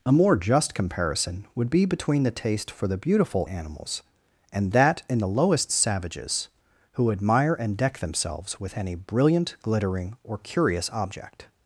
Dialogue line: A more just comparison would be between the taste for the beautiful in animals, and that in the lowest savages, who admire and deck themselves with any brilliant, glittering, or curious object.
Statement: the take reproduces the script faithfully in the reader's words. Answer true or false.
false